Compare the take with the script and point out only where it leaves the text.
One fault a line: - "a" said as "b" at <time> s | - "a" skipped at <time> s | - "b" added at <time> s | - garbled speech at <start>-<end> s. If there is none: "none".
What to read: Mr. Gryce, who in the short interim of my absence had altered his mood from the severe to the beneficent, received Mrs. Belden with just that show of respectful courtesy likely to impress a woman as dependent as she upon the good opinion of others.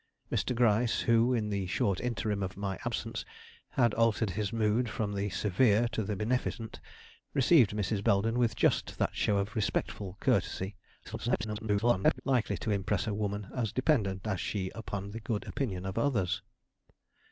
- garbled speech at 11.0-12.2 s